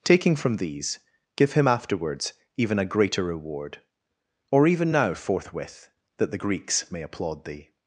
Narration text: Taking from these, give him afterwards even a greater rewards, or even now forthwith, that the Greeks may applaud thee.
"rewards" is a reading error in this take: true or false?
true